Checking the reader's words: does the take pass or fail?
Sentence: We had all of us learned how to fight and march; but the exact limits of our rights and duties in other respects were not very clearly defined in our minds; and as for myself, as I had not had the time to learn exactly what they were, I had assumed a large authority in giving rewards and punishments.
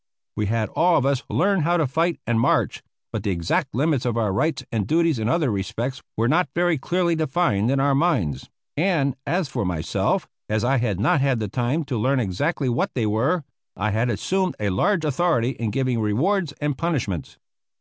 pass